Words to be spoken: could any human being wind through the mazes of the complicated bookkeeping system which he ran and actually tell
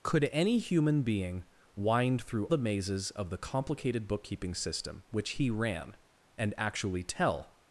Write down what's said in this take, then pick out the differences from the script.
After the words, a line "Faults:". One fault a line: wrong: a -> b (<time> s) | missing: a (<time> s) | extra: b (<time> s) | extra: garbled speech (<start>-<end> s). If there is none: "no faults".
could any human being wind through the mazes of the complicated bookkeeping system which he ran and actually tell
Faults:
no faults